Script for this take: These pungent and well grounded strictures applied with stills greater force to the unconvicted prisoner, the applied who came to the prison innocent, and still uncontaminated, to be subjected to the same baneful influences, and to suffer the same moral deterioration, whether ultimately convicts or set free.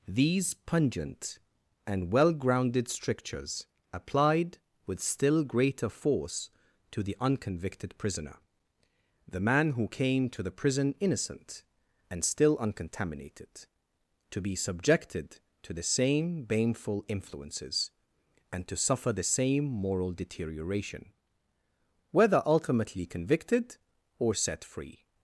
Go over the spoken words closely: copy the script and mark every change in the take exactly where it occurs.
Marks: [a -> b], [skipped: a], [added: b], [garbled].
These pungent and well grounded strictures applied with [stills -> still] greater force to the unconvicted prisoner, the [applied -> man] who came to the prison innocent, and still uncontaminated, to be subjected to the same baneful influences, and to suffer the same moral deterioration, whether ultimately [convicts -> convicted] or set free.